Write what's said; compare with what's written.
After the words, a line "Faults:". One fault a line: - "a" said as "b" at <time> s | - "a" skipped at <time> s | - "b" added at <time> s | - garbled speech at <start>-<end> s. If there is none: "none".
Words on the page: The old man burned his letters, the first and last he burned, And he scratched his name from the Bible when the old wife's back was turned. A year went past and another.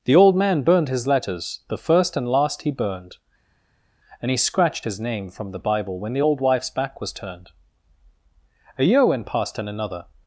The old man burned his letters, the first and last he burned, And he scratched his name from the Bible when the old wife's back was turned. A year went past and another.
Faults:
none